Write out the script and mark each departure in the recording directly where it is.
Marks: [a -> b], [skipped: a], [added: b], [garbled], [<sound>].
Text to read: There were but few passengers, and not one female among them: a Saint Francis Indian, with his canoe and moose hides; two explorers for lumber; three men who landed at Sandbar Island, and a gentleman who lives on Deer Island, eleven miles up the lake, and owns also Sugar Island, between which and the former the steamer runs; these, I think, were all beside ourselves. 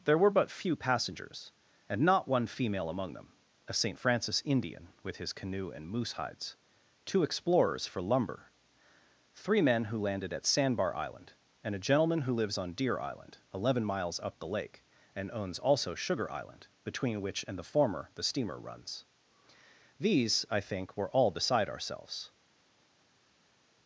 There were but few passengers, and not one female among them: a Saint Francis Indian, with his canoe and moose hides; two explorers for lumber; three men who landed at Sandbar Island, and a gentleman who lives on Deer Island, eleven miles up the lake, and owns also Sugar Island, between which and the former the steamer runs; these, I think, were all beside ourselves.